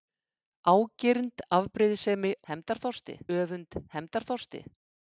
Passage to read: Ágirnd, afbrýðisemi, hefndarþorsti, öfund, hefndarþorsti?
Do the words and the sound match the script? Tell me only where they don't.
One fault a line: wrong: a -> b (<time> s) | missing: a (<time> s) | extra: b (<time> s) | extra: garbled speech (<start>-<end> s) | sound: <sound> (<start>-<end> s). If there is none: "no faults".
no faults